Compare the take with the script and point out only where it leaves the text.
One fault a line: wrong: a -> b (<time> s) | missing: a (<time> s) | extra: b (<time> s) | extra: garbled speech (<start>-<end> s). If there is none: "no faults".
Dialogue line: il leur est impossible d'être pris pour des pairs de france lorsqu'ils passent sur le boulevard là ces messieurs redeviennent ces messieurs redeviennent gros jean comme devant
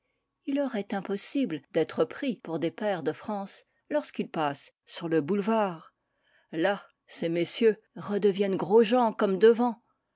missing: ces messieurs redeviennent (8.6 s)